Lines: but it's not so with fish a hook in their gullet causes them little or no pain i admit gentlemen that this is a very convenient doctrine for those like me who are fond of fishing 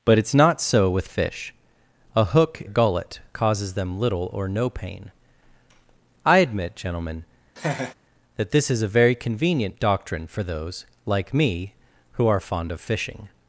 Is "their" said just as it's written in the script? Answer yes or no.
no